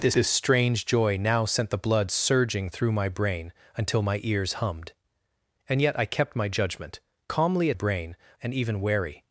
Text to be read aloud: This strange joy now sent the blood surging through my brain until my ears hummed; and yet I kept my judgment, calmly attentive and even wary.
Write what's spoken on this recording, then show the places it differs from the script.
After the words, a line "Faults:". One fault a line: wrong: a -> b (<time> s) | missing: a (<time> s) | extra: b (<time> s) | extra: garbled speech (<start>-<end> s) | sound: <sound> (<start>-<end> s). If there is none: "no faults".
This this strange joy now sent the blood surging through my brain until my ears hummed; and yet I kept my judgment, calmly brain and even wary.
Faults:
extra: this (0.1 s)
wrong: attentive -> brain (7.7 s)